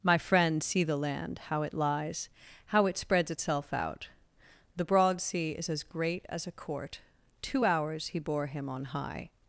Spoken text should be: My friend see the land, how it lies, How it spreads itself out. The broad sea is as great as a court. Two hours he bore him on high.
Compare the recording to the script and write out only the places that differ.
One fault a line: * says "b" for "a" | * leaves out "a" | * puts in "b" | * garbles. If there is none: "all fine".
all fine